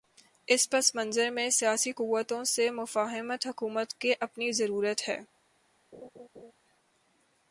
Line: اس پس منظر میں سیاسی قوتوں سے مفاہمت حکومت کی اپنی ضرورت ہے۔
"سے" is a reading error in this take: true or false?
false